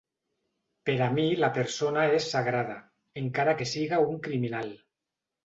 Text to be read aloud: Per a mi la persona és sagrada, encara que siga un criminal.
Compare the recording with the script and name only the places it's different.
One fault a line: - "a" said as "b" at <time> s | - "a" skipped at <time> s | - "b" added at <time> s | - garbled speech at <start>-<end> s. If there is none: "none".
none